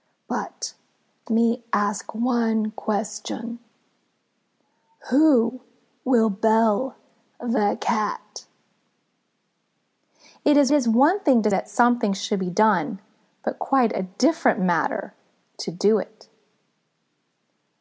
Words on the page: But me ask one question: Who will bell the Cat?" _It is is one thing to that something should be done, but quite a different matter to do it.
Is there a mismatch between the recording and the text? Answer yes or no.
no